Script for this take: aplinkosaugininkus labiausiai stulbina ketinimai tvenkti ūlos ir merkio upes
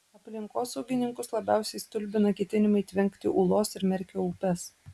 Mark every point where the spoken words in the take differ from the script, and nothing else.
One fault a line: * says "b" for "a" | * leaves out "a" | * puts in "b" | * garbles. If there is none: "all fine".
all fine